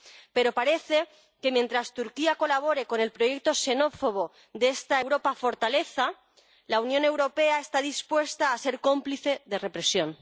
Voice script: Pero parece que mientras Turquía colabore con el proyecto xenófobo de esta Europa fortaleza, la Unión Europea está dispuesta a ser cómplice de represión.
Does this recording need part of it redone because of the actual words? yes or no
no